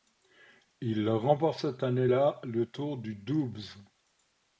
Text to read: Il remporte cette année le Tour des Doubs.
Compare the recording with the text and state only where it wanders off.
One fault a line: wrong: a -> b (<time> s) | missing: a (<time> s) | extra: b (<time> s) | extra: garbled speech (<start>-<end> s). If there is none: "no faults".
extra: là (2.0 s)
wrong: des -> du (3.0 s)